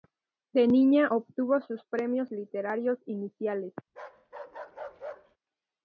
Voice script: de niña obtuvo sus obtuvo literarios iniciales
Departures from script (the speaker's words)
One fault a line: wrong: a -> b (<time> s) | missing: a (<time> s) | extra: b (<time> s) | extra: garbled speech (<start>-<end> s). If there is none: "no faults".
wrong: obtuvo -> premios (1.9 s)